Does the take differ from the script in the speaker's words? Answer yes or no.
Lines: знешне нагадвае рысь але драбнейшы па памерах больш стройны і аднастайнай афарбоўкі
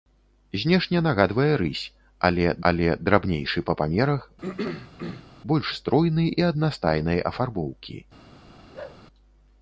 yes